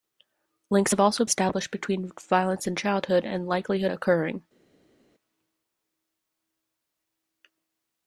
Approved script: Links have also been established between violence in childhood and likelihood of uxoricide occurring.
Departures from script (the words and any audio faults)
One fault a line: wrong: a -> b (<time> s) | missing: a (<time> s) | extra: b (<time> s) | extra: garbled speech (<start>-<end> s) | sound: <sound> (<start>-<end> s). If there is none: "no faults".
missing: been (1.2 s)
missing: of uxoricide (3.9 s)